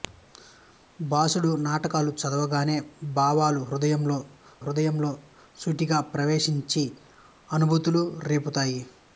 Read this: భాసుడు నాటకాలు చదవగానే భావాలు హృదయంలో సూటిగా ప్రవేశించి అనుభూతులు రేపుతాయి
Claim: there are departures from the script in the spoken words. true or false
true